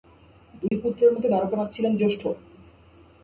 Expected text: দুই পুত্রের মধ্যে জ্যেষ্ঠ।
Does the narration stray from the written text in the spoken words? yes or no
yes